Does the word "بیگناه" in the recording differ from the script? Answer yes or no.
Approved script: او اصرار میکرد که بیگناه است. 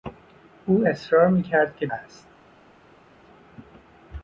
yes